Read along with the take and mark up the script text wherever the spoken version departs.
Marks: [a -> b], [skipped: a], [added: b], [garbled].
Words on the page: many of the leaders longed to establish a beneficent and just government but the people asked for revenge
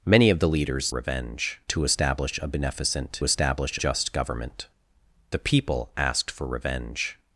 many of the leaders [longed -> revenge] to establish a beneficent [and -> establish] just government [skipped: but] the people asked for revenge